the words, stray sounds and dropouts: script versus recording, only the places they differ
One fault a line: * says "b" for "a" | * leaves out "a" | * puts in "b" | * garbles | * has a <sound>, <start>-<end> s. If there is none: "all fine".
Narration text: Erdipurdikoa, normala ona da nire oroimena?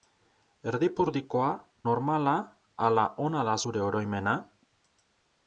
* puts in "ala"
* says "zure" for "nire"